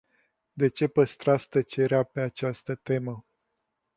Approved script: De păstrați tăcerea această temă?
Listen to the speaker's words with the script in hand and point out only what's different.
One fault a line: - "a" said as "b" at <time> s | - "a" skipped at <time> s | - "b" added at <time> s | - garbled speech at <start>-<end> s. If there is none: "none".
- "ce" added at 0.7 s
- "pe" added at 2.0 s